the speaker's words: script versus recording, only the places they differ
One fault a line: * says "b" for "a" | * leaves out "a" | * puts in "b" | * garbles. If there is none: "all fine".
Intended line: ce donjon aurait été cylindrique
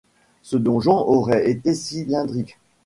all fine